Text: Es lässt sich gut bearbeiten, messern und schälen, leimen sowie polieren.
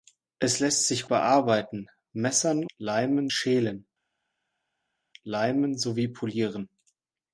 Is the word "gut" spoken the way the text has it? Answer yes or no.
no